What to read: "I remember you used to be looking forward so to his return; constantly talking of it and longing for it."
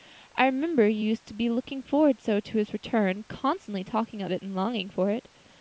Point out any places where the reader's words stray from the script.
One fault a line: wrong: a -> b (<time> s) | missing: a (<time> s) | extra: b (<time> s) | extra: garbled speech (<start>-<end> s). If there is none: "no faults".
no faults